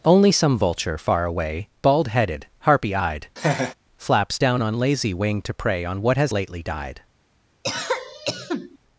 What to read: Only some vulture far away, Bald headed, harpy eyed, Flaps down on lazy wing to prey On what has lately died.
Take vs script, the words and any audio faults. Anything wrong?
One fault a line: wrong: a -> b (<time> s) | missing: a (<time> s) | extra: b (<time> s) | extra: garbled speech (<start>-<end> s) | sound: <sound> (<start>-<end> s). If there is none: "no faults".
sound: laugh (3.4-3.7 s)
sound: cough (7.6-8.8 s)